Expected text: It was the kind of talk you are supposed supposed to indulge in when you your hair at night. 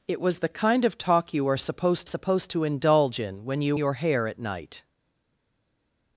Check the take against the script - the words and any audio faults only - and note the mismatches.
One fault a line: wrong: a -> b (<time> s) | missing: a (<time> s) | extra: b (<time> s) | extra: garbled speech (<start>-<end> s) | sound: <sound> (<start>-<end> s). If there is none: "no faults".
no faults